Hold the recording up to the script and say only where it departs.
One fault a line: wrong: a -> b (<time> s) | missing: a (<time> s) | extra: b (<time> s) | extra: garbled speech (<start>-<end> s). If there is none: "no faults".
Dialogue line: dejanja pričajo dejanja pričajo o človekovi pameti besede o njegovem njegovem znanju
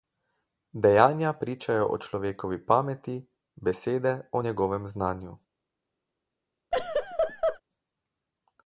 missing: dejanja pričajo (1.9 s)
missing: njegovem (4.9 s)